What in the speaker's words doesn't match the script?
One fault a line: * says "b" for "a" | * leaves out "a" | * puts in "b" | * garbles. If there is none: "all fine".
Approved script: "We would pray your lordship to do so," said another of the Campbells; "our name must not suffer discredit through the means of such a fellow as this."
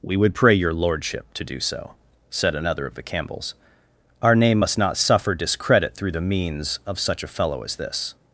all fine